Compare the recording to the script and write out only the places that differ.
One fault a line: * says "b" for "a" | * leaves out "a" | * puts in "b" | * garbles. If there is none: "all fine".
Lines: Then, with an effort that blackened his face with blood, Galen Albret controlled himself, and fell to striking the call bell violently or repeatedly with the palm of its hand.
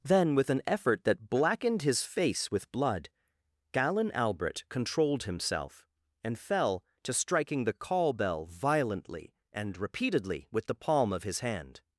* says "and" for "or"
* says "his" for "its"